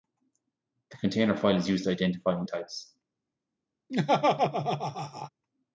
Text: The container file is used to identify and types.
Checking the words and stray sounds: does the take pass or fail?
fail